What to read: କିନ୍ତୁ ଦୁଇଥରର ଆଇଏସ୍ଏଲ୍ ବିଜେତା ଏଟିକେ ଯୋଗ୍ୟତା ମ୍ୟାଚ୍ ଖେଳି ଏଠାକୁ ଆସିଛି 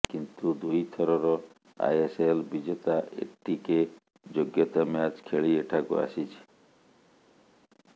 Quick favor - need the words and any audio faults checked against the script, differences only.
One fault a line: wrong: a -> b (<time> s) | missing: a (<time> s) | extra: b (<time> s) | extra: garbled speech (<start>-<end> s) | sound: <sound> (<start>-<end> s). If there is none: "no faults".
no faults